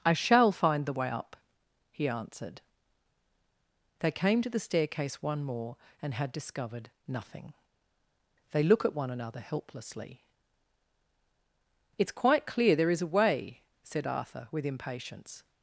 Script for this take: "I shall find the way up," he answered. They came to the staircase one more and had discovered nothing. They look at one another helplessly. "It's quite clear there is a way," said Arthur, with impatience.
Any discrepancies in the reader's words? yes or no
no